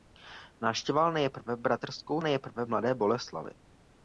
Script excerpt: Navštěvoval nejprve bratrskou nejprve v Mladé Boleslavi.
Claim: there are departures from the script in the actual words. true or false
false